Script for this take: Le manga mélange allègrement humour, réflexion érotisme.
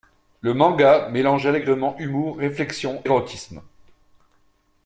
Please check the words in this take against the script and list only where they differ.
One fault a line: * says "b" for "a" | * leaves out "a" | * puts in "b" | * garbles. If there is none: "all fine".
all fine